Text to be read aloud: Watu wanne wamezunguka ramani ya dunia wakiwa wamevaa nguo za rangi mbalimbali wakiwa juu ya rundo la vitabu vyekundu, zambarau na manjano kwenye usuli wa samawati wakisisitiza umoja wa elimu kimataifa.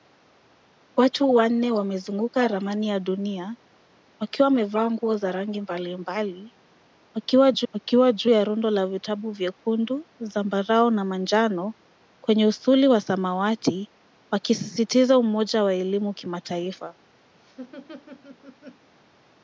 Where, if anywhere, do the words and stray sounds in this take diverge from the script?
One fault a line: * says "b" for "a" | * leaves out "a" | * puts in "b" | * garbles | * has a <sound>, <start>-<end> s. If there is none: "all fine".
* puts in "wakiwa juu"
* has a laugh, 17.3-18.9 s